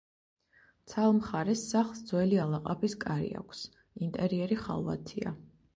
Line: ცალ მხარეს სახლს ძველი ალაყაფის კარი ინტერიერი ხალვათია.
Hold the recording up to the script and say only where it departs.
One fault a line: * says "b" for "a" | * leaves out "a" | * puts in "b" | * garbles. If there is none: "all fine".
* puts in "აქვს"